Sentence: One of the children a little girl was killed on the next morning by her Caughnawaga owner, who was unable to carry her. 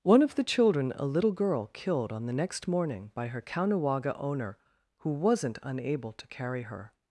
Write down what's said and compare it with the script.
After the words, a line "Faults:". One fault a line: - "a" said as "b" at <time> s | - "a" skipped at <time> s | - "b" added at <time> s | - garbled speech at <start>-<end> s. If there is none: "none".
One of the children a little girl killed on the next morning by her Caughnawaga owner, who wasn't unable to carry her.
Faults:
- "was" skipped at 1.7 s
- "was" said as "wasn't" at 5.1 s